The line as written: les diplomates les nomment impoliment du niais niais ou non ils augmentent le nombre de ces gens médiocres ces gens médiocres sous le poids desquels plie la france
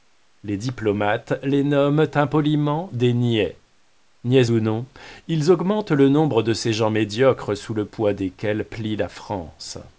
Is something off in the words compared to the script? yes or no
yes